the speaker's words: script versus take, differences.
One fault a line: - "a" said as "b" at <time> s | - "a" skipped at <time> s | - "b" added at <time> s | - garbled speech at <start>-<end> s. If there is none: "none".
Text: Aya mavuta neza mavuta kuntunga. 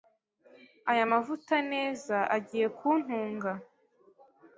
- "mavuta" said as "agiye" at 2.4 s